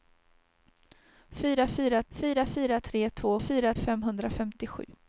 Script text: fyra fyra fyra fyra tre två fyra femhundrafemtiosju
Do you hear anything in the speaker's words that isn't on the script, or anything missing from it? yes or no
no